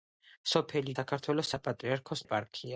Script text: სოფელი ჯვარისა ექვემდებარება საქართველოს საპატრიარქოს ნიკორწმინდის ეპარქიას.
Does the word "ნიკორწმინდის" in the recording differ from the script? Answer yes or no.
yes